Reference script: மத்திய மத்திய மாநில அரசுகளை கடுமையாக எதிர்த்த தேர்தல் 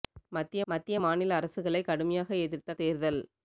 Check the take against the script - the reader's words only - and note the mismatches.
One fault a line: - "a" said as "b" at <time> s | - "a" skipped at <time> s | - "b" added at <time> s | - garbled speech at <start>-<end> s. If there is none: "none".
none